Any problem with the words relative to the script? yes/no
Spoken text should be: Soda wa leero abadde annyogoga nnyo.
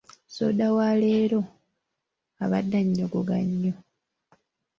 no